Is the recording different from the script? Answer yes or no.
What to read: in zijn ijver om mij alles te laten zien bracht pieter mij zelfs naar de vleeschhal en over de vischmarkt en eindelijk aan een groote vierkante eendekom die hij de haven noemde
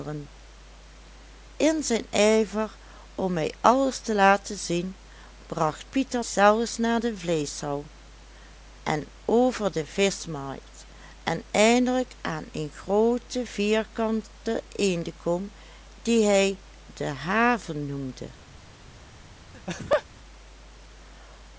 yes